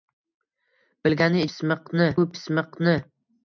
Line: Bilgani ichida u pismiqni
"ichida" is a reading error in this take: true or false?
true